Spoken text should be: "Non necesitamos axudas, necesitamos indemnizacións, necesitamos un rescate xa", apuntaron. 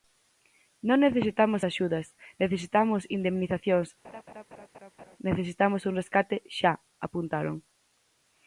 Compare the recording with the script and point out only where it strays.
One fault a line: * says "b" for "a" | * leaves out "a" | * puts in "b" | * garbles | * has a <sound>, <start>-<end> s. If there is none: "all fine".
* has a laugh, 4.0-5.2 s